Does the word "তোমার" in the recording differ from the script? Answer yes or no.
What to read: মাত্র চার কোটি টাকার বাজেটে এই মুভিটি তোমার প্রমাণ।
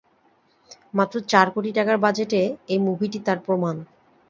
yes